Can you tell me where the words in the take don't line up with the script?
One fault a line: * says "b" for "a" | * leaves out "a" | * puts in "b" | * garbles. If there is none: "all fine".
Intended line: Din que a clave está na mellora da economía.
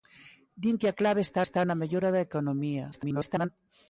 * puts in "está"
* garbles